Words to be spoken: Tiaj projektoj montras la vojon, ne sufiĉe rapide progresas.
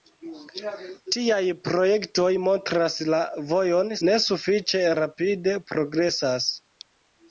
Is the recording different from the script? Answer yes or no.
no